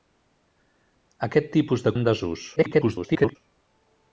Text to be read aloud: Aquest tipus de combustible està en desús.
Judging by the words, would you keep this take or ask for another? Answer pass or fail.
fail